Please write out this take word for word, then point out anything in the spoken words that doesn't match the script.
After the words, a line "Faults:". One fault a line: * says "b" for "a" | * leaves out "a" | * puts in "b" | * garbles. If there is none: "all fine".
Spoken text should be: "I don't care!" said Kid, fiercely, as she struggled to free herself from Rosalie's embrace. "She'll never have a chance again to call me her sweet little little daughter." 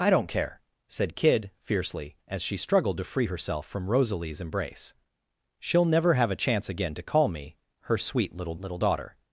"I don't care!" said Kid, fiercely, as she struggled to free herself from Rosalie's embrace. "She'll never have a chance again to call me her sweet little little daughter."
Faults:
all fine